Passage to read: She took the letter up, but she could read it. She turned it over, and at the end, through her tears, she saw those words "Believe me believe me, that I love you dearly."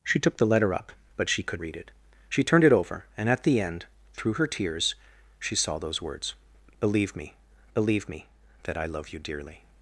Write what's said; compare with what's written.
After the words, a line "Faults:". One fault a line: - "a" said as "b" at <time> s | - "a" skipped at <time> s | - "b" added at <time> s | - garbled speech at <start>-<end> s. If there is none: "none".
She took the letter up, but she could read it. She turned it over, and at the end, through her tears, she saw those words "Believe me believe me, that I love you dearly."
Faults:
none